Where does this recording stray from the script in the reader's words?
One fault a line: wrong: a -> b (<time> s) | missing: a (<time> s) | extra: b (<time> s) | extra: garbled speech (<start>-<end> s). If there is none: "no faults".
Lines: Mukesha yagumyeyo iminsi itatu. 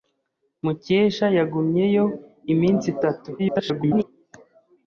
extra: garbled speech (3.4-4.0 s)